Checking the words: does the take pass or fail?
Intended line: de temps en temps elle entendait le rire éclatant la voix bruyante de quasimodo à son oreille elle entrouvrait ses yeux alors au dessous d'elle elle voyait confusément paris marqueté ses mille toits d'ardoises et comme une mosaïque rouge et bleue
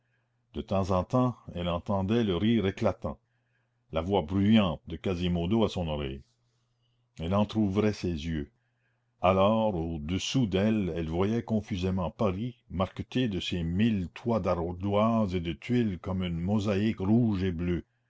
fail